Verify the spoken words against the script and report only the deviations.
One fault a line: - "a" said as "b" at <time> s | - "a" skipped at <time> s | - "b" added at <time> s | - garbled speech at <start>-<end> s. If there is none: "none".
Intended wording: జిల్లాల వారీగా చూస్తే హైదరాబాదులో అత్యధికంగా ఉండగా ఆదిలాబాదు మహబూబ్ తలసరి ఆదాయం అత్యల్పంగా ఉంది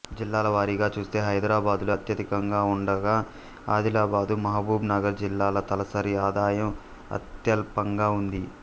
- "నగర్ జిల్లాల" added at 4.9 s